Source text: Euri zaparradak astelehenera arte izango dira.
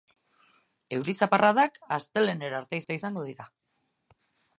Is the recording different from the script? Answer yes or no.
yes